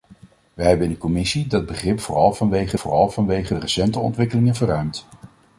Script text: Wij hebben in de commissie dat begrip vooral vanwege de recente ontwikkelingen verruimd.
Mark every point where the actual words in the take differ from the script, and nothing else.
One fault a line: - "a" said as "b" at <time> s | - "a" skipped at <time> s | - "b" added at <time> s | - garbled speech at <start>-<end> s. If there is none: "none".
- "vooral vanwege" added at 2.7 s